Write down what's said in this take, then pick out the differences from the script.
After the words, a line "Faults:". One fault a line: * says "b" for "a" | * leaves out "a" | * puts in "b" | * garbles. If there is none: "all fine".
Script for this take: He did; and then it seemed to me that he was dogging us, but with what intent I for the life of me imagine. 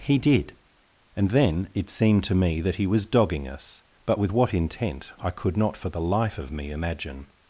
He did; and then it seemed to me that he was dogging us, but with what intent I could not for the life of me imagine.
Faults:
* puts in "could not"